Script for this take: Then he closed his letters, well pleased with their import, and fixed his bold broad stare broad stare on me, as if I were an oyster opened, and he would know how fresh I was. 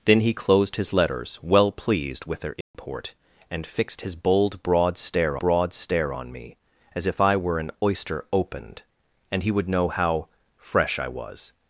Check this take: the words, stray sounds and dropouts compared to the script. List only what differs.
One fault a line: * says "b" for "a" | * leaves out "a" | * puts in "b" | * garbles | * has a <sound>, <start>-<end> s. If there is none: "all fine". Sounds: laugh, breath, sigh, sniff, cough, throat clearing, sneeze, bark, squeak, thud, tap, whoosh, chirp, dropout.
* has a dropout, 2.6-2.7 s